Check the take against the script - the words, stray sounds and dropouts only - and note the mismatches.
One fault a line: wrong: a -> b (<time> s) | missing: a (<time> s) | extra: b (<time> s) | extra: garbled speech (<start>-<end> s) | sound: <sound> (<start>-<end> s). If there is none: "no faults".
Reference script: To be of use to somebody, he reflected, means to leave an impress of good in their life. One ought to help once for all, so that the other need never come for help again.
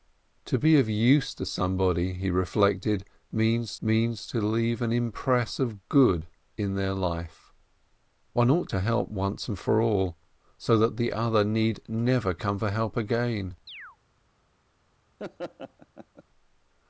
extra: means (3.8 s)
sound: chirp (13.7-14.0 s)
sound: laugh (15.2-16.2 s)